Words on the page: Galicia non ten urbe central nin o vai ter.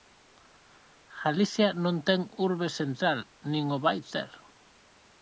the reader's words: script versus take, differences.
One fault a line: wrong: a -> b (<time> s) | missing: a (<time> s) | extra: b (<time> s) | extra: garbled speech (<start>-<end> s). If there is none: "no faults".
no faults